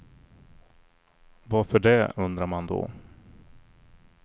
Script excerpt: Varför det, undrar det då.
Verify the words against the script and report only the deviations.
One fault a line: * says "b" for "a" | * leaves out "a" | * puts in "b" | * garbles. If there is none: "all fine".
* says "man" for "det"